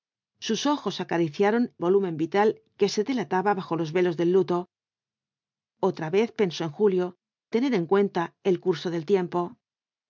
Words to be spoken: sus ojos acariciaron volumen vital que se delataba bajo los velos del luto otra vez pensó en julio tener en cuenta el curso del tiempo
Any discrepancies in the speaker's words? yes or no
no